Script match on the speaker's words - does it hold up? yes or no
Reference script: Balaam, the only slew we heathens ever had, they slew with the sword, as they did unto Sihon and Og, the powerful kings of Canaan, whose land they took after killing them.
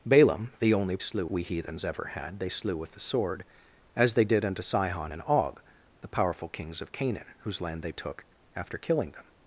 yes